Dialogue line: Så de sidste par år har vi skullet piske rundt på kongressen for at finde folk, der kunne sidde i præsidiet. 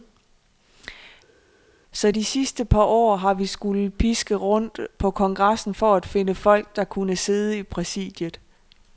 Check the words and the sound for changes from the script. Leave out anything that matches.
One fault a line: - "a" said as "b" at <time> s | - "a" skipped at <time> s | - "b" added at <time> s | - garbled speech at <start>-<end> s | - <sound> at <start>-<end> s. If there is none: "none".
none